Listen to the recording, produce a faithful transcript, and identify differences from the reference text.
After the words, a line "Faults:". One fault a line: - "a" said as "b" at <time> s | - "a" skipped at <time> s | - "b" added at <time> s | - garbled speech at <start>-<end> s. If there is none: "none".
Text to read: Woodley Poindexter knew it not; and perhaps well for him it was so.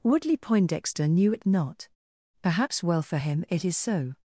Woodley Poindexter knew it not; perhaps well for him it is so.
Faults:
- "and" skipped at 1.9 s
- "was" said as "is" at 3.6 s